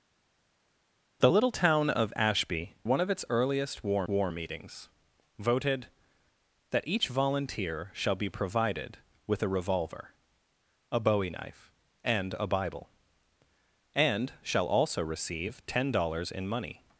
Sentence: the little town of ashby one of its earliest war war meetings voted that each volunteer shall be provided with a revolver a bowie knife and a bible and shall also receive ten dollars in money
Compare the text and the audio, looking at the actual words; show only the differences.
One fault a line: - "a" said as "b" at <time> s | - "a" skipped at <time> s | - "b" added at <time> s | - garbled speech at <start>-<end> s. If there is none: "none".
none